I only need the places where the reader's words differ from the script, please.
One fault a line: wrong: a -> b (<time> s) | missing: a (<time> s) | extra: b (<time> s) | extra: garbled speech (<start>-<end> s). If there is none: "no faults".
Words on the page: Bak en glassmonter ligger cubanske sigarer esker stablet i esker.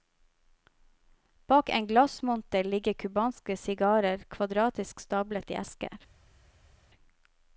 wrong: esker -> kvadratisk (4.4 s)